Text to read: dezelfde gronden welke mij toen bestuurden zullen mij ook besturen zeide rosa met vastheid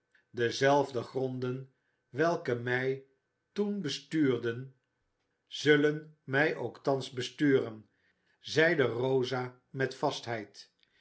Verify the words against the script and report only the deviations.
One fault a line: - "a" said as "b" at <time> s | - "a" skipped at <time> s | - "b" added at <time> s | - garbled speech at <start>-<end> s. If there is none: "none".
- "thans" added at 6.8 s